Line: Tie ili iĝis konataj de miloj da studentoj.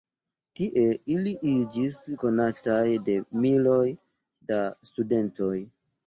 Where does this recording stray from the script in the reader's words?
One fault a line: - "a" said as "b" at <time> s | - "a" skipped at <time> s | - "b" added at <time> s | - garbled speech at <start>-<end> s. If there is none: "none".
none